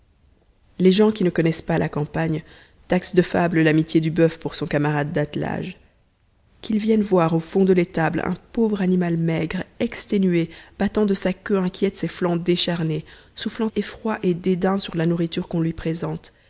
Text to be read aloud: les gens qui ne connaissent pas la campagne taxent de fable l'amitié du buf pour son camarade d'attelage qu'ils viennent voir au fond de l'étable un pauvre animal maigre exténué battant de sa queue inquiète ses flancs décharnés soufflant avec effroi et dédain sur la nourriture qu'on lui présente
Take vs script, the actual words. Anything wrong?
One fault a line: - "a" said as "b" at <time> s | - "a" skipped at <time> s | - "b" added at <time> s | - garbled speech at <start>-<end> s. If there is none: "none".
- "avec" skipped at 13.7 s